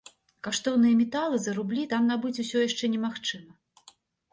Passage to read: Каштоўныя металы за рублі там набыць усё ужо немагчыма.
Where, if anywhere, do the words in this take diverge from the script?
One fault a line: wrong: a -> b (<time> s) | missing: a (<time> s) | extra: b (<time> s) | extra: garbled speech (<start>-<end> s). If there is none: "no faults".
wrong: ужо -> яшчэ (2.7 s)